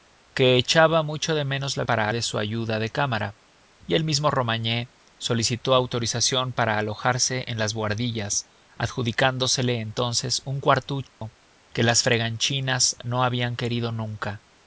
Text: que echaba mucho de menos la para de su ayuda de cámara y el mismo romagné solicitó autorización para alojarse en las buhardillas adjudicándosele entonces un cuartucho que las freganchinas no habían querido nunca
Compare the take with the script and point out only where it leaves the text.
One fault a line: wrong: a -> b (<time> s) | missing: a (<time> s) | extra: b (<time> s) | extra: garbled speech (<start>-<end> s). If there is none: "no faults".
no faults